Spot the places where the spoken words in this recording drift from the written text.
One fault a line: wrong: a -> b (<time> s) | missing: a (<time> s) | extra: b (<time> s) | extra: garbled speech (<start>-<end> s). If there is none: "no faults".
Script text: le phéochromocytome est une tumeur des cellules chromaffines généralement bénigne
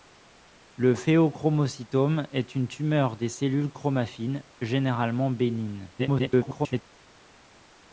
extra: garbled speech (6.0-6.8 s)